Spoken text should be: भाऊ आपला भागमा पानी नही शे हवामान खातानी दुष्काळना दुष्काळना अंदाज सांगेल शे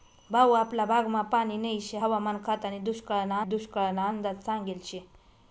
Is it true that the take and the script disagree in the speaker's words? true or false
false